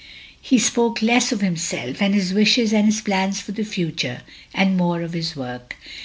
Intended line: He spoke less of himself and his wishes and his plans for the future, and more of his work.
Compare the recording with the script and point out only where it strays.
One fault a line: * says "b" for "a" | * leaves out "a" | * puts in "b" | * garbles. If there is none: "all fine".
all fine